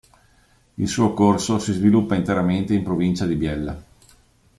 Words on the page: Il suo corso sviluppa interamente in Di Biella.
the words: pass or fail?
fail